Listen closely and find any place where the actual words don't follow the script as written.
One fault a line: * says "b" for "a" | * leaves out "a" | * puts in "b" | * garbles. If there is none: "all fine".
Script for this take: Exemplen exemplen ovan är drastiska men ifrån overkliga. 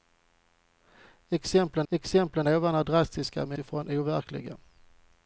all fine